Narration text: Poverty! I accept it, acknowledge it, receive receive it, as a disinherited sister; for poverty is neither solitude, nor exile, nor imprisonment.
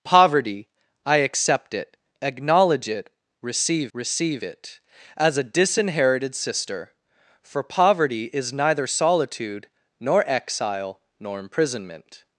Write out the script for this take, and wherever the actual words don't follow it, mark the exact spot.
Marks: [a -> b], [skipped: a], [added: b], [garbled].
Poverty! I accept it, acknowledge it, receive receive it, as a disinherited sister; for poverty is neither solitude, nor exile, nor imprisonment.